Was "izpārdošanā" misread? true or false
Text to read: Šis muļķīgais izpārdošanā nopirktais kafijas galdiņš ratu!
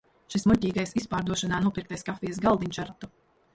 false